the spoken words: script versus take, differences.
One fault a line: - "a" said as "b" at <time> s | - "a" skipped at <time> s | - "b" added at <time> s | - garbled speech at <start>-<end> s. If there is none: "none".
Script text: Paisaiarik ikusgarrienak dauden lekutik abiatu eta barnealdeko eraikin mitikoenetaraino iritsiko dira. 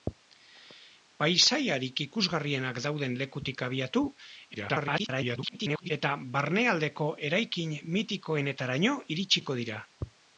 - garbled speech at 4.5-5.9 s